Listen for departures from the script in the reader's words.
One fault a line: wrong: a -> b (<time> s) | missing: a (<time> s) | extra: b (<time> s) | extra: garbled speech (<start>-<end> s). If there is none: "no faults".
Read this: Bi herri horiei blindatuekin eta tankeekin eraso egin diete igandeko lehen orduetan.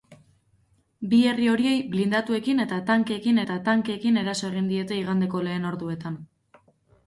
extra: eta tankeekin (3.4 s)